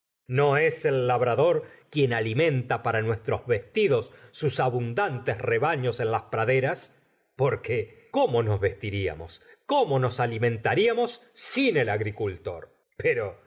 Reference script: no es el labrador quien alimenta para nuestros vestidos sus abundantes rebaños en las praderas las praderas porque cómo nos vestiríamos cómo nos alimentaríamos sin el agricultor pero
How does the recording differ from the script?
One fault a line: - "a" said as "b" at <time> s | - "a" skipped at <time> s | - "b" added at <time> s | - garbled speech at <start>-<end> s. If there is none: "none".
- "las praderas" skipped at 7.0 s